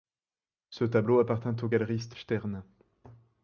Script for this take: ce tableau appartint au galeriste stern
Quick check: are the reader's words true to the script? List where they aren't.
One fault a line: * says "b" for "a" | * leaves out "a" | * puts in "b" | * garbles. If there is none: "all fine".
all fine